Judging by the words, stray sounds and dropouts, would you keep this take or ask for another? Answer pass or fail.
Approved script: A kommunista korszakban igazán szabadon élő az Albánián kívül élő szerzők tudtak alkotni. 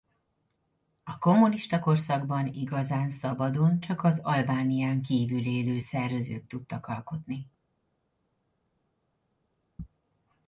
fail